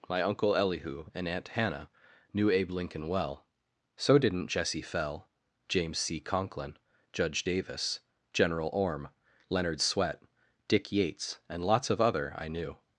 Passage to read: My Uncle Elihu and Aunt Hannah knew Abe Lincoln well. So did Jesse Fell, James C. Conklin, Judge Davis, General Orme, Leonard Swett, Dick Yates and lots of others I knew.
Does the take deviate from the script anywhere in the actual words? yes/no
yes